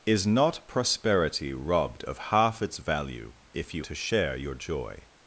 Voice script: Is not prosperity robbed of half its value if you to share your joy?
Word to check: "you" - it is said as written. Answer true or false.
true